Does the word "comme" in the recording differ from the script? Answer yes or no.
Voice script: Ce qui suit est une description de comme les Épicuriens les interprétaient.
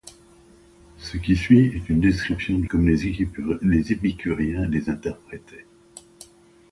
no